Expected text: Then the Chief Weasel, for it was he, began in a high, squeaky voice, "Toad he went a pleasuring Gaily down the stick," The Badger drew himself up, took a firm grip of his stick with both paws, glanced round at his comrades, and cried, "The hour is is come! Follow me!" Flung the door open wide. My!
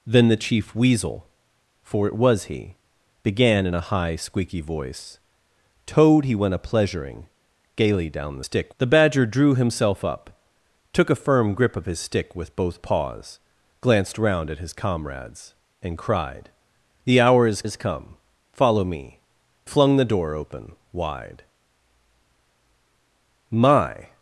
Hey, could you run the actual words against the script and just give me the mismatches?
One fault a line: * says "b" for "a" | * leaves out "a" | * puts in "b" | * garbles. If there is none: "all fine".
all fine